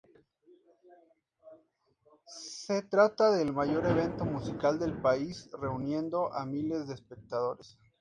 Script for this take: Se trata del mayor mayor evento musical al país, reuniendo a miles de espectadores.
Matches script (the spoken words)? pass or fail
fail